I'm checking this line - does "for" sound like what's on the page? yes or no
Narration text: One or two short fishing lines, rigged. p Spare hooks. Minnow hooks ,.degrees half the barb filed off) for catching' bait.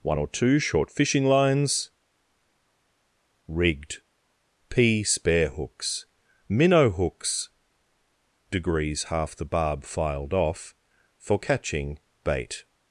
yes